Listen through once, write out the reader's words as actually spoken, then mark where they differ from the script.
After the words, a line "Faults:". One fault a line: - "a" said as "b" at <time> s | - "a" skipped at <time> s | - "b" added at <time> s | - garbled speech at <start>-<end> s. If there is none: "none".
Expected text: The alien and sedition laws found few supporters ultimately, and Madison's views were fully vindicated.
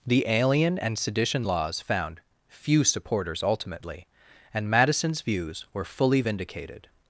The alien and sedition laws found few supporters ultimately, and Madison's views were fully vindicated.
Faults:
none